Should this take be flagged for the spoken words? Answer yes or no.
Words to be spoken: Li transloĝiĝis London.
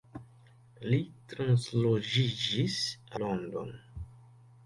no